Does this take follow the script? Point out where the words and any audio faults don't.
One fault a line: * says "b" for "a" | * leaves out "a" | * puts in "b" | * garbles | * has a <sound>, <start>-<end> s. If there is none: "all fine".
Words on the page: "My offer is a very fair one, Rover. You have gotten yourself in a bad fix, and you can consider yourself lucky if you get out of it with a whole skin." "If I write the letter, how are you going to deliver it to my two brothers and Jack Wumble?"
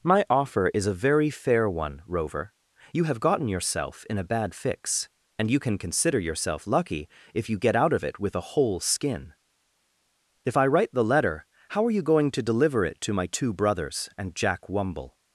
all fine